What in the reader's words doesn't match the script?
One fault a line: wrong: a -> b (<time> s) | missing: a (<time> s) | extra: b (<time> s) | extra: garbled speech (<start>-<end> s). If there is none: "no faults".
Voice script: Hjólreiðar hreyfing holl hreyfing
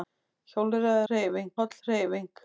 no faults